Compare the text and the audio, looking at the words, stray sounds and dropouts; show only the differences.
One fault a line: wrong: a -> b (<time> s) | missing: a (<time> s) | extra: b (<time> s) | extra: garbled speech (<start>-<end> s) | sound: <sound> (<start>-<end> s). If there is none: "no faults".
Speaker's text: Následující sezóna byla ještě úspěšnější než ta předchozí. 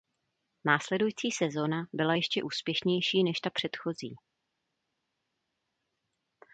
no faults